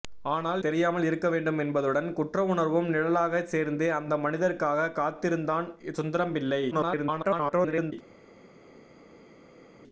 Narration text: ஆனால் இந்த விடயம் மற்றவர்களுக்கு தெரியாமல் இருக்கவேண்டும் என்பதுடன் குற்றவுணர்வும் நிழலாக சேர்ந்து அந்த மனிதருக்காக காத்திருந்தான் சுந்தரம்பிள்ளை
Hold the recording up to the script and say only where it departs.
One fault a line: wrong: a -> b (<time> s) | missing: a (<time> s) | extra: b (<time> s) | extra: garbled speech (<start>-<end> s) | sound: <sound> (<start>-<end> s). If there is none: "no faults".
missing: இந்த விடயம் மற்றவர்களுக்கு (0.6 s)
extra: garbled speech (6.7-7.9 s)